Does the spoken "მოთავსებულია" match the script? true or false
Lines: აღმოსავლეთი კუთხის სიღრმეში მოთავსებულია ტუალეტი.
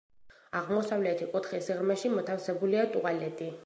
true